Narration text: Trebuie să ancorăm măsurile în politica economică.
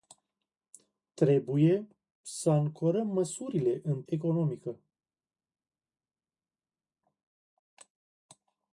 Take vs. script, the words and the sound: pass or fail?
fail